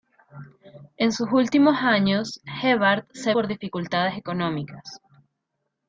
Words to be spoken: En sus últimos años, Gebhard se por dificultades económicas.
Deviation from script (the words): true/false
false